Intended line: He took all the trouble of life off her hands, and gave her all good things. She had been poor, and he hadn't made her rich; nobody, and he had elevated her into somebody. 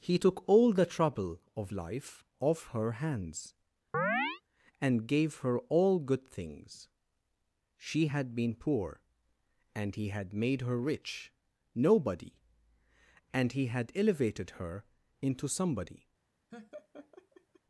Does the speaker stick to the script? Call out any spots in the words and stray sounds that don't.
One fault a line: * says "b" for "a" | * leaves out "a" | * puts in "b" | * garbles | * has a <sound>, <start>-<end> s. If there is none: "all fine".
* has a chirp, 3.9-4.4 s
* says "had" for "hadn't"
* has a laugh, 16.5-17.6 s